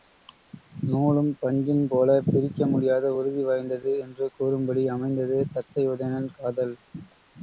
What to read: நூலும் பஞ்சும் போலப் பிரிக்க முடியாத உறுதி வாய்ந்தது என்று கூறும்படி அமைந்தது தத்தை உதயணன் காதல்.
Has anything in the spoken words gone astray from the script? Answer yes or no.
no